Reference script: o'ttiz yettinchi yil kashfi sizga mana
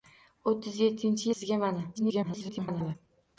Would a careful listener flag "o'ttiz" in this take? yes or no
no